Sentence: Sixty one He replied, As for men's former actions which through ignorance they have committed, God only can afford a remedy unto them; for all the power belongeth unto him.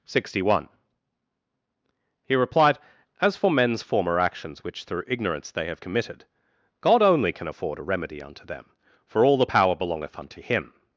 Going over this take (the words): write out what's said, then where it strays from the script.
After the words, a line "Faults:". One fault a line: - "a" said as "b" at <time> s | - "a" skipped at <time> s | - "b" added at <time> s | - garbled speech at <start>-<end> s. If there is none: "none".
Sixty one He replied, As for men's former actions which through ignorance they have committed, God only can afford a remedy unto them; for all the power belongeth unto him.
Faults:
none